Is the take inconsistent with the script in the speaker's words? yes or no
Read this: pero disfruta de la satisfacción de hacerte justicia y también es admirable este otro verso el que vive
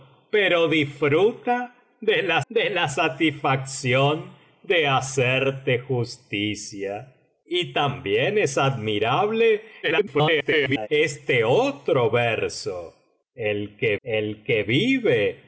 yes